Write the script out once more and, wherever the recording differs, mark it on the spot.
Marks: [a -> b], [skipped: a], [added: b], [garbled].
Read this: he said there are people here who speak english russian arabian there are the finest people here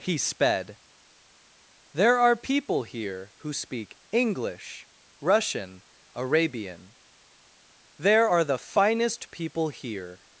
he [said -> sped] there are people here who speak english russian arabian there are the finest people here